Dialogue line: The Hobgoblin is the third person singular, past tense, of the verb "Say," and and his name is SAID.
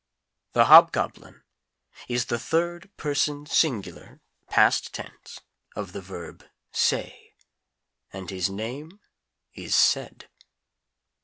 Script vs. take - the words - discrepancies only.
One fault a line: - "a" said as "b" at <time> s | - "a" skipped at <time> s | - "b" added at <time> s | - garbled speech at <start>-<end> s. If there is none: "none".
- "and" skipped at 8.3 s